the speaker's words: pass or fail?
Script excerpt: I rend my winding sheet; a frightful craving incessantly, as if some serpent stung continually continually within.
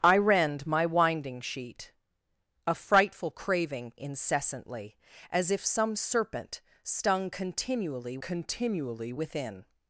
pass